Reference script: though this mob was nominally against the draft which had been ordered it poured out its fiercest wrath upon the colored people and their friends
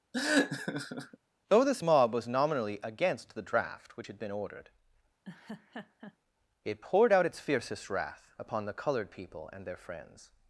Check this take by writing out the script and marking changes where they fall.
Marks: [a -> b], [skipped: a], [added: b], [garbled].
though this mob was nominally against the draft which had been ordered it poured out its fiercest wrath upon the colored people and their friends